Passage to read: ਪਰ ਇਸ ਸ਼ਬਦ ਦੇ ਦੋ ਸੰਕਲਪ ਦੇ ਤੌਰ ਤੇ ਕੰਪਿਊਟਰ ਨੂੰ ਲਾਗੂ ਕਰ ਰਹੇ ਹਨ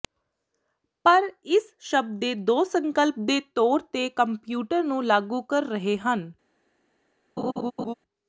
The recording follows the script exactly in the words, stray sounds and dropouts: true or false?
false